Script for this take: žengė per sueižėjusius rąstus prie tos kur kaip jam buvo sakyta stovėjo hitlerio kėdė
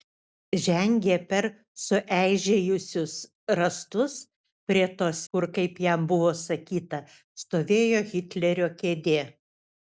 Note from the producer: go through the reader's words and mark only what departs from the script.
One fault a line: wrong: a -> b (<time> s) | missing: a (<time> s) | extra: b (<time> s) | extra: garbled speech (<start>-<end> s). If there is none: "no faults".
no faults